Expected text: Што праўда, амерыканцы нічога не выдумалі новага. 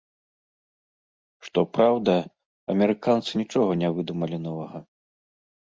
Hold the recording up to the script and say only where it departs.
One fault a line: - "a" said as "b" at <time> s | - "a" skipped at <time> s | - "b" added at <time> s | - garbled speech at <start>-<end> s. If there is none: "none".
none